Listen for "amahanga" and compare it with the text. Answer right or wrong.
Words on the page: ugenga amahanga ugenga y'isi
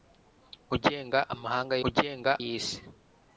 right